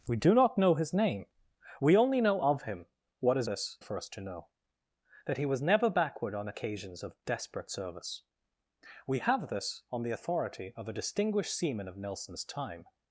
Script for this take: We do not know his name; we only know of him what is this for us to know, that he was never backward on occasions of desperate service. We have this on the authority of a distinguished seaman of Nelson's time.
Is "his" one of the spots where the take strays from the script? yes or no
no